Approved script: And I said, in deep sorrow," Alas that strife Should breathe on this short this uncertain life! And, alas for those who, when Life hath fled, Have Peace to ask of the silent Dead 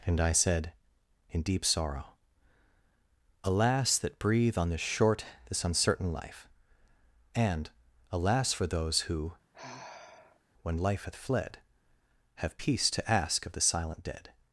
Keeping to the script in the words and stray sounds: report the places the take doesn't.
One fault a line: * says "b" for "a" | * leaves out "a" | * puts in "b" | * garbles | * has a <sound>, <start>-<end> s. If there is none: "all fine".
* leaves out "strife Should"
* has a sigh, 9.5-10.4 s